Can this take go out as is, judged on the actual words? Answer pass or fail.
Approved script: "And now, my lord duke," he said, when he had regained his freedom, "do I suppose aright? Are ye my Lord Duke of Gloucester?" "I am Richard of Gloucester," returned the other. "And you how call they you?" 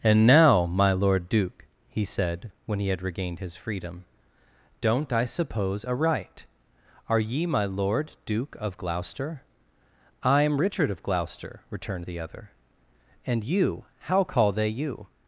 fail